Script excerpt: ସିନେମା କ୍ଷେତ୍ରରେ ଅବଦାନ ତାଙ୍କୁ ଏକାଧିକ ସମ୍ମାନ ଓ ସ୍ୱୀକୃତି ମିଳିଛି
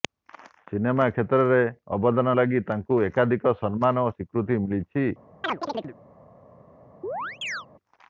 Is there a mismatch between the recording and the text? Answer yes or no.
yes